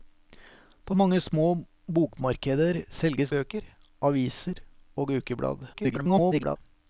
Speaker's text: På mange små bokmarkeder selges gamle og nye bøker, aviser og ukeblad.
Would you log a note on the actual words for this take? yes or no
yes